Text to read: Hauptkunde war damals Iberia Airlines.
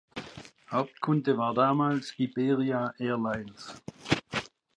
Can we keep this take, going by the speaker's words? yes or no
yes